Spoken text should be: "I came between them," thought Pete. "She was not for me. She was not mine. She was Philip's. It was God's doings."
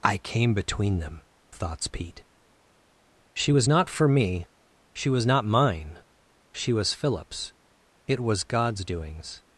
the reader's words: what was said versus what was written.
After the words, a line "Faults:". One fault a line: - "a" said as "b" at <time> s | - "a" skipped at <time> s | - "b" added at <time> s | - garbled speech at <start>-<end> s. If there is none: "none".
"I came between them," thoughts Pete. "She was not for me. She was not mine. She was Philip's. It was God's doings."
Faults:
- "thought" said as "thoughts" at 1.5 s